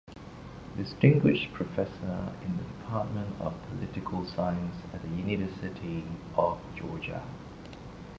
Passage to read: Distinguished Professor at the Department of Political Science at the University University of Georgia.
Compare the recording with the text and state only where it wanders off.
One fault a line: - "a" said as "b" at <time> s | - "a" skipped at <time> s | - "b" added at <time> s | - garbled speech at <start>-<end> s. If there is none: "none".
- "at" said as "in" at 2.4 s
- "University" skipped at 6.0 s